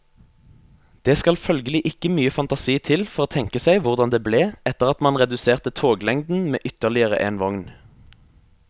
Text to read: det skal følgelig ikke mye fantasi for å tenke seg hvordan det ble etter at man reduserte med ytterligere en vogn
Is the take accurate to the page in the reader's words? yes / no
no